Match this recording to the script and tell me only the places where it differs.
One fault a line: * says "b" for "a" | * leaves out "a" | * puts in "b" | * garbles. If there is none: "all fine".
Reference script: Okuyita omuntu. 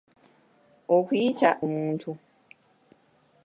all fine